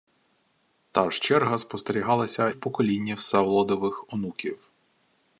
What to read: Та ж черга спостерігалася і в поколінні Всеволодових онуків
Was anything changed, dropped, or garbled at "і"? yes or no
yes